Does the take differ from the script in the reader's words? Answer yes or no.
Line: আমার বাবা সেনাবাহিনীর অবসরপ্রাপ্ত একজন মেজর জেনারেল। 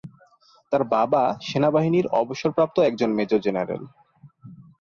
yes